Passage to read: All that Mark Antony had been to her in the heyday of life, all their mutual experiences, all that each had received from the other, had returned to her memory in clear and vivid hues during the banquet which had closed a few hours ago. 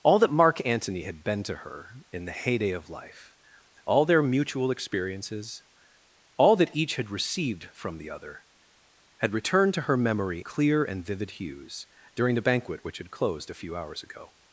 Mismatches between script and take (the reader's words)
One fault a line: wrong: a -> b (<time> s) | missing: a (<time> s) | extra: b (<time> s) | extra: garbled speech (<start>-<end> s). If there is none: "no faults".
missing: in (10.4 s)